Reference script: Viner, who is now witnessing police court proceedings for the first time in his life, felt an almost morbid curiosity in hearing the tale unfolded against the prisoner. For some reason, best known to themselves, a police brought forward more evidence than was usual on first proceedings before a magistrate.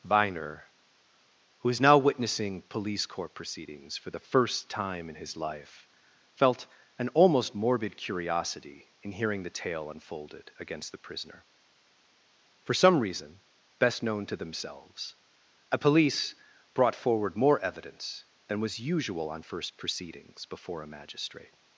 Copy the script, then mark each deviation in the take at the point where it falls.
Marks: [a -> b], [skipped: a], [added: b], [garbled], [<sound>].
Viner, who is now witnessing police court proceedings for the first time in his life, felt an almost morbid curiosity in hearing the tale unfolded against the prisoner. For some reason, best known to themselves, a police brought forward more evidence than was usual on first proceedings before a magistrate.